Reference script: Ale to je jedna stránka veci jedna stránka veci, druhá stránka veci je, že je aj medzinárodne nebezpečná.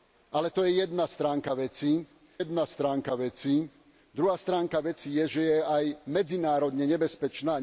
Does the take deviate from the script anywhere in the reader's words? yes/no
no